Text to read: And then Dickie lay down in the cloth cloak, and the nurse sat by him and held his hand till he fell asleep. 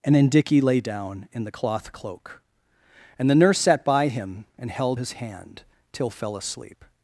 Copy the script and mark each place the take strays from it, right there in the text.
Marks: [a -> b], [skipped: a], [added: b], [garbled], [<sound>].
And then Dickie lay down in the cloth cloak, and the nurse sat by him and held his hand till [skipped: he] fell asleep.